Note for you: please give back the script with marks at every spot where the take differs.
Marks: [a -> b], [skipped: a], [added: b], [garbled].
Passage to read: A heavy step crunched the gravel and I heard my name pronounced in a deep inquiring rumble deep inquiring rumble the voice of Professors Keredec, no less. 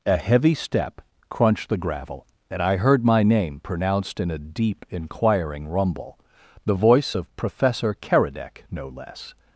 A heavy step crunched the gravel and I heard my name pronounced in a deep inquiring rumble [skipped: deep inquiring rumble] the voice of [Professors -> Professor] Keredec, no less.